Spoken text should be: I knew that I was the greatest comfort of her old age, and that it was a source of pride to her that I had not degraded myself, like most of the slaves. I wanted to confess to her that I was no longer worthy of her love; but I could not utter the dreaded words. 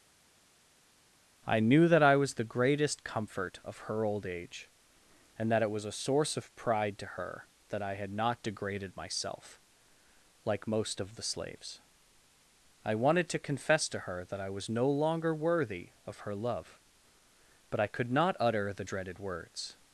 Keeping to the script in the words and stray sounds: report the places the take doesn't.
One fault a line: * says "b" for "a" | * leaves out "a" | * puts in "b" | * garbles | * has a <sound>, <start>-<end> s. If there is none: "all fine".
all fine